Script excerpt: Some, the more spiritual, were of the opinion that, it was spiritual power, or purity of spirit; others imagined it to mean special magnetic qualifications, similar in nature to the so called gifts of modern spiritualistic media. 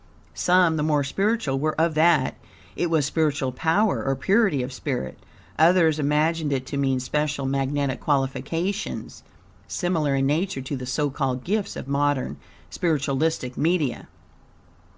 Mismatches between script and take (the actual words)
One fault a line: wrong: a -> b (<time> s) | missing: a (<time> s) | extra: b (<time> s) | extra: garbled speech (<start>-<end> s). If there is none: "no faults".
missing: the opinion (1.9 s)